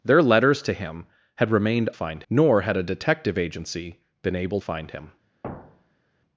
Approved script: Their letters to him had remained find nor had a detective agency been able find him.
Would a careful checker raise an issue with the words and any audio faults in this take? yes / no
yes